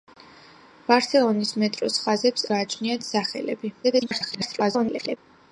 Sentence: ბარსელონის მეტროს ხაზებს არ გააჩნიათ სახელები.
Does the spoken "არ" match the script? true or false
false